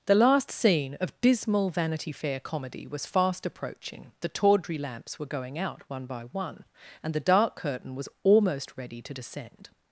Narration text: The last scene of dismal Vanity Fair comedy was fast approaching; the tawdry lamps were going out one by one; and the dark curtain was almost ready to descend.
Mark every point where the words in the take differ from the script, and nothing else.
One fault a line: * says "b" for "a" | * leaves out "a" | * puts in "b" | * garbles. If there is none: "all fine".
all fine